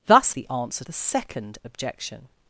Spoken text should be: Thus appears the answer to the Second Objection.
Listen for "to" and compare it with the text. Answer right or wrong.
wrong